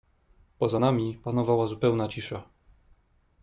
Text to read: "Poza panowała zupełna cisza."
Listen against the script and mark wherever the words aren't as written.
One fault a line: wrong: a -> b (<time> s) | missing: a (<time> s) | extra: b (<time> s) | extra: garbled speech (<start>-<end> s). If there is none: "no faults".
extra: nami (0.8 s)